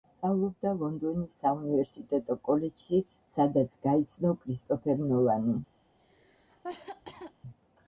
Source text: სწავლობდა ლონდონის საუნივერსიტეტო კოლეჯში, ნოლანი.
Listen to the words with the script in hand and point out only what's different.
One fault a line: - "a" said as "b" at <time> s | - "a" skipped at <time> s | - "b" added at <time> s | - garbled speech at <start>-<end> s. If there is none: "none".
- "სადაც გაიცნო კრისტოფერ" added at 3.4 s